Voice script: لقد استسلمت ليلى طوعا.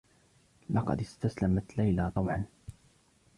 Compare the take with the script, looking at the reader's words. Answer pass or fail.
pass